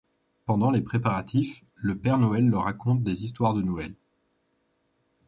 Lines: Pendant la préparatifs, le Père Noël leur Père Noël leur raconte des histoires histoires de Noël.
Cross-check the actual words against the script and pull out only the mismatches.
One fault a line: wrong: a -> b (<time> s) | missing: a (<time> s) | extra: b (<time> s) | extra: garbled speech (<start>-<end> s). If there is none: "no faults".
wrong: la -> les (0.7 s)
missing: Père Noël leur (2.6 s)
missing: histoires (3.5 s)